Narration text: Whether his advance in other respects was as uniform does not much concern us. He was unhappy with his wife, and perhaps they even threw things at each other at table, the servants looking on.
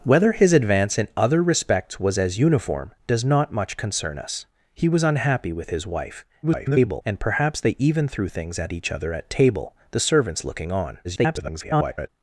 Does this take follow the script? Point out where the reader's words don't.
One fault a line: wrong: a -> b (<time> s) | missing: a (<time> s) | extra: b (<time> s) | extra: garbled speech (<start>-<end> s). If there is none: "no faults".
extra: garbled speech (6.4-7.0 s)
extra: garbled speech (11.0-12.1 s)